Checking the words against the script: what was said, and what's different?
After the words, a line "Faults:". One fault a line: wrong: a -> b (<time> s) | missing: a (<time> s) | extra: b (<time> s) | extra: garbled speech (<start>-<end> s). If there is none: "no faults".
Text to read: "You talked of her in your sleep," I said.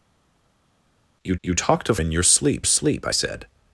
"You you talked of in your sleep sleep," I said.
Faults:
extra: you (1.4 s)
missing: her (2.0 s)
extra: sleep (2.6 s)